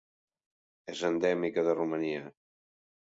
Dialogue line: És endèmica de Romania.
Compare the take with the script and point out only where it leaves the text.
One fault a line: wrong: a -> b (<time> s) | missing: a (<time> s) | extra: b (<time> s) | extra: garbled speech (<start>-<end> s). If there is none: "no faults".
no faults